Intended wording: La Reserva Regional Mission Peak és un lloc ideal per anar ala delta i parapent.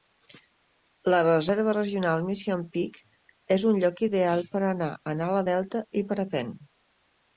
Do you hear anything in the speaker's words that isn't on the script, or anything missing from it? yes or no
yes